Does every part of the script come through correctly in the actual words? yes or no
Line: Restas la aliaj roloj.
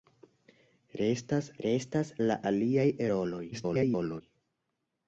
no